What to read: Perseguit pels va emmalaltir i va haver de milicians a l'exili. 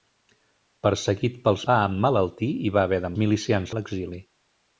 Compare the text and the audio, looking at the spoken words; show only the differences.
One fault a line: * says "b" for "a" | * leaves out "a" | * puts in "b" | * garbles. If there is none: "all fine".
all fine